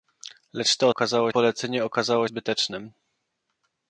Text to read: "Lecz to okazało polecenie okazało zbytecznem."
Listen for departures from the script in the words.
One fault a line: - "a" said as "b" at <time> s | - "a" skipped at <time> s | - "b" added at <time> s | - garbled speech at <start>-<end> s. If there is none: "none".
none